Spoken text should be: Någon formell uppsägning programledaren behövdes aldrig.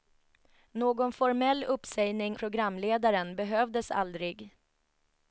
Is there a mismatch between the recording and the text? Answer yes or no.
no